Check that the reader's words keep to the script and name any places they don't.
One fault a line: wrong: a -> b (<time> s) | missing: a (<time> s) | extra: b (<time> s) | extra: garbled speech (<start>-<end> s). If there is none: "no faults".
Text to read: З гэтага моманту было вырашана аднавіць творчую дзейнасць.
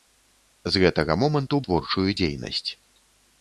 missing: было вырашана аднавіць (1.6 s)